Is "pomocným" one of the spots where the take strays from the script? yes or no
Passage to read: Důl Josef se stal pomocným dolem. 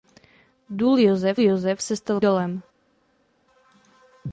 yes